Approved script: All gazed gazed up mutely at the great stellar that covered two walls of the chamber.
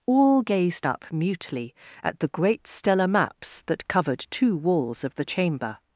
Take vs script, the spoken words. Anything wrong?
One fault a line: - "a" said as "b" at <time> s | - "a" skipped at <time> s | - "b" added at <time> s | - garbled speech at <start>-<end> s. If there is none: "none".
- "gazed" skipped at 0.9 s
- "maps" added at 3.1 s